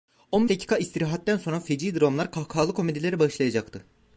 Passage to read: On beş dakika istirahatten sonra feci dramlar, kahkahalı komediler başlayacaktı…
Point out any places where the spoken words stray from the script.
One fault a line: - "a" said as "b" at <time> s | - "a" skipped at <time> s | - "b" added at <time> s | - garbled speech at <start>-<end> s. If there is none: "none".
- "beş" skipped at 0.5 s